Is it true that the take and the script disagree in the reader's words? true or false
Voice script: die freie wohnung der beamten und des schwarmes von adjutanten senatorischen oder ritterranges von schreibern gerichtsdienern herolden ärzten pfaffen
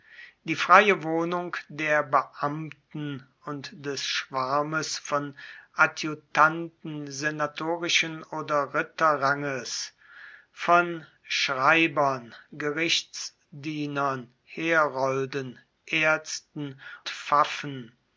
false